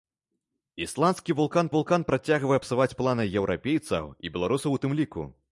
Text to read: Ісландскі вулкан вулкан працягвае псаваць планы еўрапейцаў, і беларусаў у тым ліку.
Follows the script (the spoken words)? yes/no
yes